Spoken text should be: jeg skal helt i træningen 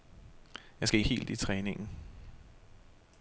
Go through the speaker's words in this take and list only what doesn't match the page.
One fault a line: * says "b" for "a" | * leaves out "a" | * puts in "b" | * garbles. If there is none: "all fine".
all fine